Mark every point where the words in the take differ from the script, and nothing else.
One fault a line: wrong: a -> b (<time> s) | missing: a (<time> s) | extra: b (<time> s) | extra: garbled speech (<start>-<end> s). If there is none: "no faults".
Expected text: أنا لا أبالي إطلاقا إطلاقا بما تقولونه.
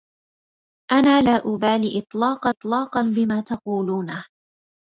no faults